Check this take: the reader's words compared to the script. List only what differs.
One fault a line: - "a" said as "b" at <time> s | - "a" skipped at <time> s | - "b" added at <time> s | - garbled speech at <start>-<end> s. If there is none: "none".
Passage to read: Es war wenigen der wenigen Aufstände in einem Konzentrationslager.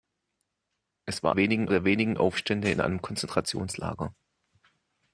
none